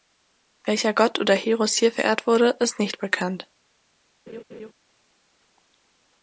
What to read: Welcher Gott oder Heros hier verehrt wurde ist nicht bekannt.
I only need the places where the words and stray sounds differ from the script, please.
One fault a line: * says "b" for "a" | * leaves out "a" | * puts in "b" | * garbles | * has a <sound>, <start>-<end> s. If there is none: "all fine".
* has a laugh, 4.3-4.7 s